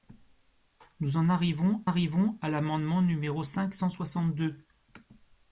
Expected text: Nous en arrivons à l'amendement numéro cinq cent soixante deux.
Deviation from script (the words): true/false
true